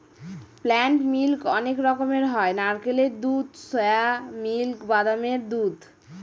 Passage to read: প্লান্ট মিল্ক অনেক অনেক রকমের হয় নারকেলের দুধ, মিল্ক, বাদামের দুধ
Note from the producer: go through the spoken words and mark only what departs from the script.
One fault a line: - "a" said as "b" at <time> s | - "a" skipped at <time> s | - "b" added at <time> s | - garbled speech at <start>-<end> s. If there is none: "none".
- "অনেক" skipped at 1.8 s
- "সোয়া" added at 3.7 s